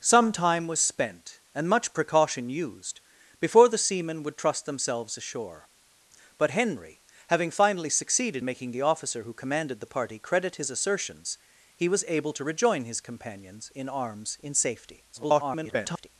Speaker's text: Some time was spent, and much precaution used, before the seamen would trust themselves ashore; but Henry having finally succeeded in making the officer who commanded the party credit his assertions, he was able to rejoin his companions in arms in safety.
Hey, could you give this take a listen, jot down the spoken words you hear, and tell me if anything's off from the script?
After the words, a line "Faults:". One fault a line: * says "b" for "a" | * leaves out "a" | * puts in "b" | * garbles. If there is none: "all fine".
Some time was spent, and much precaution used, before the seamen would trust themselves ashore; but Henry having finally succeeded making the officer who commanded the party credit his assertions, he was able to rejoin his companions in arms in safety. [garbled]
Faults:
* leaves out "in"
* garbles